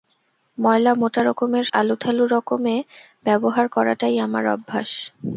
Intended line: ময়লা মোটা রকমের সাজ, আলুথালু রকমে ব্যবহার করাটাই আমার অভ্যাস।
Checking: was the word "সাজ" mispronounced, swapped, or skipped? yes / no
yes